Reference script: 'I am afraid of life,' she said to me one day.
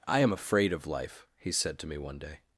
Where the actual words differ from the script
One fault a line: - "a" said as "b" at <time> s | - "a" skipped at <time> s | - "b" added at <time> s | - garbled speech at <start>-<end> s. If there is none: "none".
- "she" said as "he" at 1.4 s